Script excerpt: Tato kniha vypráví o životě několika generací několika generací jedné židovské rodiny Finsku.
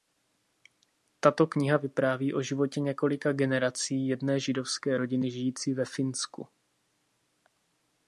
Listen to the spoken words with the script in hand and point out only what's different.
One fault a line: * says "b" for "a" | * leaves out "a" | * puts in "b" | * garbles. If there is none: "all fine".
* leaves out "několika generací"
* puts in "žijící ve"